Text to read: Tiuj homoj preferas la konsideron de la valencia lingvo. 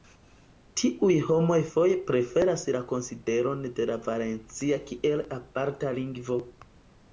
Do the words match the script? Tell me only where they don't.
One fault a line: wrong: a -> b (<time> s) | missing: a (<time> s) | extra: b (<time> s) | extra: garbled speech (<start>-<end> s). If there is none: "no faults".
extra: foje (1.7 s)
extra: kiel aparta (4.9 s)